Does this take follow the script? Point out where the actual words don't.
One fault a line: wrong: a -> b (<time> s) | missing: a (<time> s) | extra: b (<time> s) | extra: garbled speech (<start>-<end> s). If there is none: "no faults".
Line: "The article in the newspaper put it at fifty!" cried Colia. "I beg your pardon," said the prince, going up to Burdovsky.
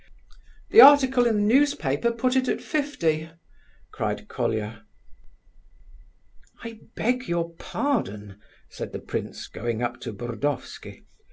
no faults